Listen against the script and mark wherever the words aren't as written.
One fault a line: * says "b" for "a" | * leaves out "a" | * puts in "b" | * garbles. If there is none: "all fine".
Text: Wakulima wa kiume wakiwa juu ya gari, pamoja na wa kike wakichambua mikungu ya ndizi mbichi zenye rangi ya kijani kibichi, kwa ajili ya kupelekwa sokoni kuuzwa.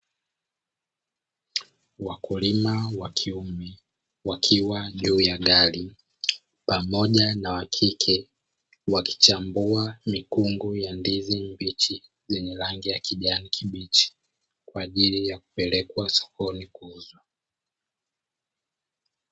all fine